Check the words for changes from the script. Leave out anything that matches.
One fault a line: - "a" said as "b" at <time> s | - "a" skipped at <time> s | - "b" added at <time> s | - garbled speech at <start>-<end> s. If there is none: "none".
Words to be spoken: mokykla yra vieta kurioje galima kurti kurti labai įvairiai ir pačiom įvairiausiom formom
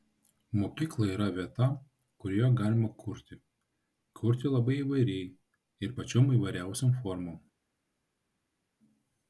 none